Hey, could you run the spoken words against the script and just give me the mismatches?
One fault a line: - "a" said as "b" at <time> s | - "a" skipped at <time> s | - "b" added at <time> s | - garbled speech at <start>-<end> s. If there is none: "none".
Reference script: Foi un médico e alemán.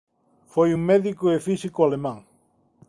- "físico" added at 1.5 s